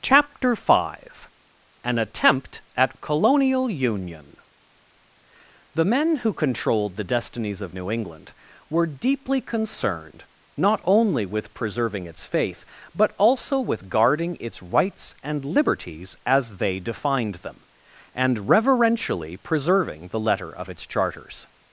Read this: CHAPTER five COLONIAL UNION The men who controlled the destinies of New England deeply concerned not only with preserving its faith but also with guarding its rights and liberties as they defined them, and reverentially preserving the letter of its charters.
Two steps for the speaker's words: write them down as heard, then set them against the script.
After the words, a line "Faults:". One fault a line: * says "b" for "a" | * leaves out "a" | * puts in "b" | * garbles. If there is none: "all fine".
CHAPTER five AN ATTEMPT AT COLONIAL UNION The men who controlled the destinies of New England were deeply concerned not only with preserving its faith but also with guarding its rights and liberties as they defined them, and reverentially preserving the letter of its charters.
Faults:
* puts in "AN ATTEMPT AT"
* puts in "were"